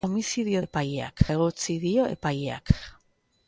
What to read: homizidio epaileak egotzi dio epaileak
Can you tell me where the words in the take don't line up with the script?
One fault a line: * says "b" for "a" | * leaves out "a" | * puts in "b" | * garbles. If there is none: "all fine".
all fine